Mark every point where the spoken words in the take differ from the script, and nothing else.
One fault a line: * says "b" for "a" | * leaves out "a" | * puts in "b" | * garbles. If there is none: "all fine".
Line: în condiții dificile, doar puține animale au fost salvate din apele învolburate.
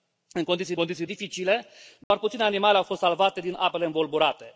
* puts in "condiții"